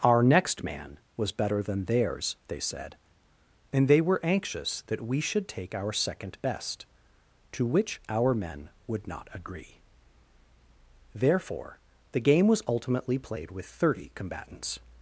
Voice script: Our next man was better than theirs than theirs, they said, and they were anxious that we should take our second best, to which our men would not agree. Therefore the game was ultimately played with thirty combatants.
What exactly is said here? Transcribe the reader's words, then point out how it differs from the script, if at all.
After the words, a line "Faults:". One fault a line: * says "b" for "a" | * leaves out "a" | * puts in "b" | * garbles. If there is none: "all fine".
Our next man was better than theirs, they said, and they were anxious that we should take our second best, to which our men would not agree. Therefore the game was ultimately played with thirty combatants.
Faults:
* leaves out "than theirs"